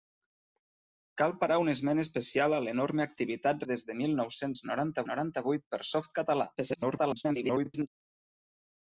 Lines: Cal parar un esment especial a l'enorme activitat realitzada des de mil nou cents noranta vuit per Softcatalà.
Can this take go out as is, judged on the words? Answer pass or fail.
fail